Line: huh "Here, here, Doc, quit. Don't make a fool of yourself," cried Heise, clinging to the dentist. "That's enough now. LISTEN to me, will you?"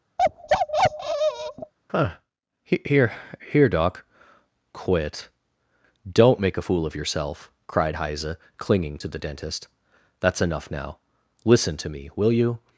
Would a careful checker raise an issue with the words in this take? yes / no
no